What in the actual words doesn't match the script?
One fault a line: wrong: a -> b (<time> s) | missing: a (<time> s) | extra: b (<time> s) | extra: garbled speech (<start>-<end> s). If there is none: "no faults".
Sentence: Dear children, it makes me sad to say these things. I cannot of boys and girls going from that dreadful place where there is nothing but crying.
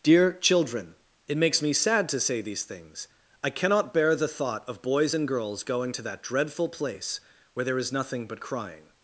extra: bear the thought (3.9 s)
wrong: from -> to (5.9 s)